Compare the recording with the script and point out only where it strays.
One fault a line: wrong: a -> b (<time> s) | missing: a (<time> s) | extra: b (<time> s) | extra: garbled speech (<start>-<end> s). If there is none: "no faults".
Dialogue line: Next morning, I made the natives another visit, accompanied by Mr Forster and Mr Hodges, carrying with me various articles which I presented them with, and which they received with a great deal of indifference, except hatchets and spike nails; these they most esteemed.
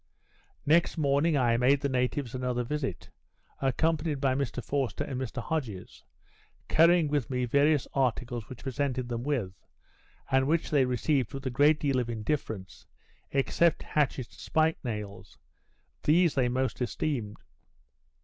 missing: I (8.6 s)
missing: and (14.4 s)